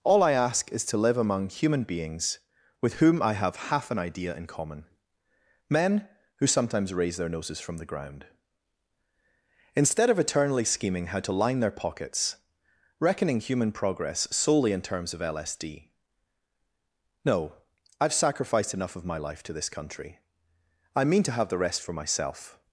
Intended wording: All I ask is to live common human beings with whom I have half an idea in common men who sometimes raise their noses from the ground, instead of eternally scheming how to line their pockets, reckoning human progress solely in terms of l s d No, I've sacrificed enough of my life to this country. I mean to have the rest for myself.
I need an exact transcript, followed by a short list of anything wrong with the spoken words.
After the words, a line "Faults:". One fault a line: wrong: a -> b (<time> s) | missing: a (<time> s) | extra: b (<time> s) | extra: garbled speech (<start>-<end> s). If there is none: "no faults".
All I ask is to live among human beings with whom I have half an idea in common men who sometimes raise their noses from the ground, instead of eternally scheming how to line their pockets, reckoning human progress solely in terms of l s d No, I've sacrificed enough of my life to this country. I mean to have the rest for myself.
Faults:
wrong: common -> among (1.2 s)